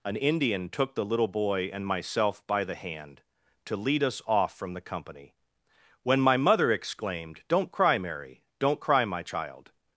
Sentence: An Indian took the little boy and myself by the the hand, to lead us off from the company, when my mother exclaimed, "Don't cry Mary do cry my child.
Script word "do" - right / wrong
wrong